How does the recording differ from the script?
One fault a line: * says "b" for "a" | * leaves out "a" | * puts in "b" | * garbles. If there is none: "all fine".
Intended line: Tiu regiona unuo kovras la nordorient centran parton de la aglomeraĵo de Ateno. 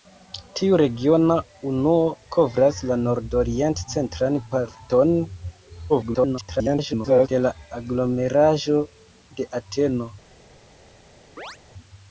* garbles